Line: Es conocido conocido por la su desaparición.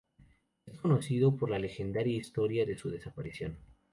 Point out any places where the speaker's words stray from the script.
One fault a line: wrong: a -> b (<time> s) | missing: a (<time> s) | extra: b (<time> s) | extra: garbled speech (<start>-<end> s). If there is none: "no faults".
missing: conocido (1.4 s)
extra: legendaria historia de (1.6 s)